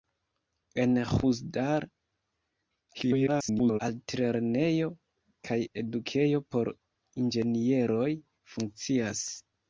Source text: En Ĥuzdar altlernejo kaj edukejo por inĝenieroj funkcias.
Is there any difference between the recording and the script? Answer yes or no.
yes